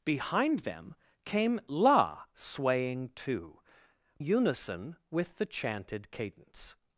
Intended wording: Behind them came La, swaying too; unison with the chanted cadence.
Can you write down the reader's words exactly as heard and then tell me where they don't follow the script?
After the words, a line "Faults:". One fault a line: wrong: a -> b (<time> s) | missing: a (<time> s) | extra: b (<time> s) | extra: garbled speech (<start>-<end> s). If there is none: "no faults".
Behind them came La, swaying too; unison with the chanted cadence.
Faults:
no faults